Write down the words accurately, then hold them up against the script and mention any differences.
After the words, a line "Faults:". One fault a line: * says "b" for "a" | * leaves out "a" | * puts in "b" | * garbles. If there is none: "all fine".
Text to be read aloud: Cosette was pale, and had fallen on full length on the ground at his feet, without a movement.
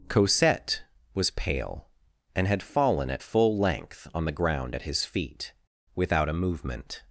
Cosette was pale, and had fallen at full length on the ground at his feet, without a movement.
Faults:
* says "at" for "on"